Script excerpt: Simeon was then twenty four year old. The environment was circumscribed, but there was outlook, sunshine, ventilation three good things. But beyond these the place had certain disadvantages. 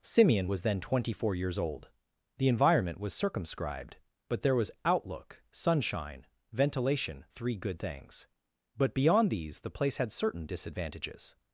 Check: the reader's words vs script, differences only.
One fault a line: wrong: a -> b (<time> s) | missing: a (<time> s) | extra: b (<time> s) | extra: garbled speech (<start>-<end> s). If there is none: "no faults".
wrong: year -> years (1.3 s)